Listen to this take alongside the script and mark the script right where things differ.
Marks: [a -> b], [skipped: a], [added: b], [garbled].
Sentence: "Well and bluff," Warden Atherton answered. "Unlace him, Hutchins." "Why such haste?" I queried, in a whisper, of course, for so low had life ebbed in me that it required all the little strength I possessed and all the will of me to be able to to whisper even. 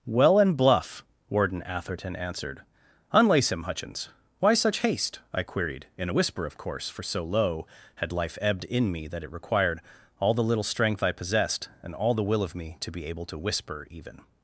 "Well and bluff," Warden Atherton answered. "Unlace him, Hutchins." "Why such haste?" I queried, in a whisper, of course, for so low had life ebbed in me that it required all the little strength I possessed and all the will of me to be able to [skipped: to] whisper even.